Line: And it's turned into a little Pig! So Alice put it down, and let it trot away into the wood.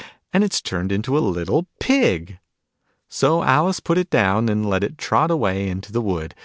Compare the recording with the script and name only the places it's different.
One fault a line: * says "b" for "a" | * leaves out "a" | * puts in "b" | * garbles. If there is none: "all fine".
all fine